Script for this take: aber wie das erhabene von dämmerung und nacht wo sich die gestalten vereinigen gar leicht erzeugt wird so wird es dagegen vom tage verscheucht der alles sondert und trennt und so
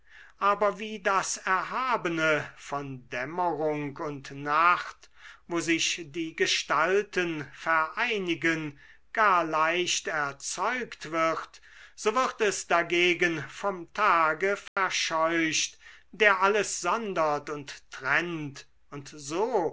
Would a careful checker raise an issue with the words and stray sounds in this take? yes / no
yes